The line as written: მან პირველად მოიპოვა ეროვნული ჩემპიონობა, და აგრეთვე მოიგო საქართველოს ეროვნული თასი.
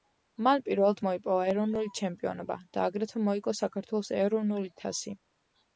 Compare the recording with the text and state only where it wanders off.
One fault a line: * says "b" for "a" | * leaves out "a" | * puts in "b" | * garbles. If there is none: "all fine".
all fine